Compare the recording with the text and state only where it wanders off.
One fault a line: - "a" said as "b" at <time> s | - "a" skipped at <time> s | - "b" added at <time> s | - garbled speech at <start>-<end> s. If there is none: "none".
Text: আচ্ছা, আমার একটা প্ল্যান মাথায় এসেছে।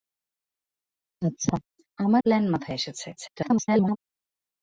- "একটা" skipped at 2.2 s
- garbled speech at 3.2-4.0 s